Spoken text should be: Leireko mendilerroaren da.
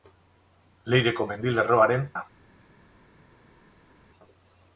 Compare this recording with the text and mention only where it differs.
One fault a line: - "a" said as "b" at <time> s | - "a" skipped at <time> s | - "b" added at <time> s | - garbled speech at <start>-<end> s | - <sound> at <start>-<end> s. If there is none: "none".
none